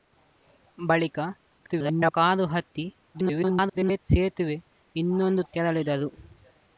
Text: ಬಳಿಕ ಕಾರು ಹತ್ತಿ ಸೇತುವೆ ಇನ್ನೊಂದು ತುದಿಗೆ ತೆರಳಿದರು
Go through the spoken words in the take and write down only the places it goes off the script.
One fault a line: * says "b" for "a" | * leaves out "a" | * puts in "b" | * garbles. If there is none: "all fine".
* garbles
* garbles
* leaves out "ತುದಿಗೆ"